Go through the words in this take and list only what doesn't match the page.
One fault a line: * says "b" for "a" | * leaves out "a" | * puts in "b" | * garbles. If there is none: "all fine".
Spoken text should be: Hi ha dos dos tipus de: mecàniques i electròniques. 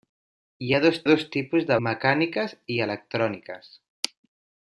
all fine